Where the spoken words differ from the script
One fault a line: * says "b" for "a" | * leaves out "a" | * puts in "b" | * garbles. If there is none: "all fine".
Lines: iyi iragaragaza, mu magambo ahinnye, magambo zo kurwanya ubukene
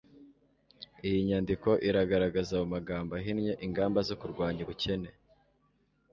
* puts in "nyandiko"
* says "ingamba" for "magambo"